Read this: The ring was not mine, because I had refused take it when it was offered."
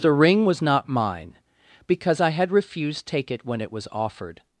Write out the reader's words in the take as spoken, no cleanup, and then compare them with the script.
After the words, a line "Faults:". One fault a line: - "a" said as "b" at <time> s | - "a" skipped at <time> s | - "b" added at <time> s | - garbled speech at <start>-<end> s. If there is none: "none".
The ring was not mine, because I had refused take it when it was offered."
Faults:
none